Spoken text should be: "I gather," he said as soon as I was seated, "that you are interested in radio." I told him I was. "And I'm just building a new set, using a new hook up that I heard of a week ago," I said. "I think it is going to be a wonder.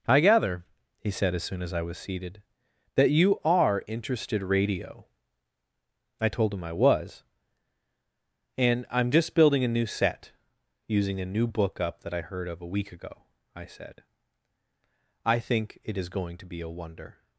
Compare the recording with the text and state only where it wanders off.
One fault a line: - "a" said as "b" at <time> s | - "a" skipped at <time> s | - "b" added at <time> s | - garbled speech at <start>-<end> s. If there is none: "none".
- "in" skipped at 4.4 s
- "hook" said as "book" at 11.5 s